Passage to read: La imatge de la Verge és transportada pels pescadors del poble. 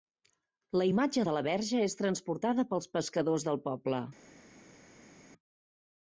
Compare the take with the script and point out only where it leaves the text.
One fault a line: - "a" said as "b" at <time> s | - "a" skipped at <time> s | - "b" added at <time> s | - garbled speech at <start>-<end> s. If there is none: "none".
none